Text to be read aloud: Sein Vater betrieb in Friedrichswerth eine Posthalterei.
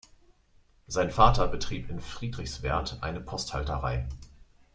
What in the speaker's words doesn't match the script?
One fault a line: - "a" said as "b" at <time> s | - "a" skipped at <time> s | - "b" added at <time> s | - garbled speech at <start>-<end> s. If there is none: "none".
none